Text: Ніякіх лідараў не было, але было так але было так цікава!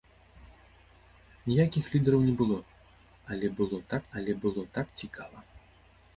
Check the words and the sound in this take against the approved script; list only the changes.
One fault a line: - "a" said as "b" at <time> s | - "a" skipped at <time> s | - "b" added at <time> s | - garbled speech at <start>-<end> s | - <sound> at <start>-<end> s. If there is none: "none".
none